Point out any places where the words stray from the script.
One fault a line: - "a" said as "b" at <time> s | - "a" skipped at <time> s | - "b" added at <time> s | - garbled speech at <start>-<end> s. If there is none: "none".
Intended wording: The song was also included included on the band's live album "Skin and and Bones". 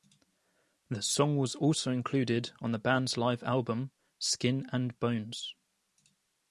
- "included" skipped at 2.5 s
- "and" skipped at 5.0 s